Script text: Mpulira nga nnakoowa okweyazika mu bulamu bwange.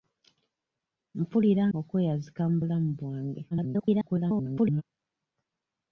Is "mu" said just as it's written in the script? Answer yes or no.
yes